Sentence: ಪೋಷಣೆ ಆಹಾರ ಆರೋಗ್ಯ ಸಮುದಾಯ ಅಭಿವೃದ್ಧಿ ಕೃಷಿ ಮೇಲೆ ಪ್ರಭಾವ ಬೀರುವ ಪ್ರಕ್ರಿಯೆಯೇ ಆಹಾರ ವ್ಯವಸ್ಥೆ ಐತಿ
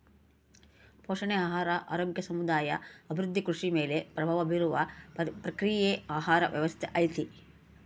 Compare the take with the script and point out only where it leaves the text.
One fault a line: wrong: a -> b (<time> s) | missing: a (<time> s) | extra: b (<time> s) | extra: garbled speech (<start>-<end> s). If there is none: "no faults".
no faults